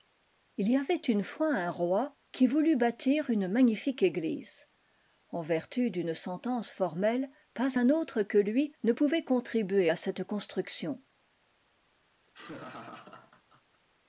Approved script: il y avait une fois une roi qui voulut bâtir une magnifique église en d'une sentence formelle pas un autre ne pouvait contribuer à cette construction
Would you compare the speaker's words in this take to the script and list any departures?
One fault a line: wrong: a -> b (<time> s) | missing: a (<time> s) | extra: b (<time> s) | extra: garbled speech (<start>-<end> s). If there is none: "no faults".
wrong: une -> un (1.5 s)
extra: vertu (5.4 s)
extra: que lui (8.2 s)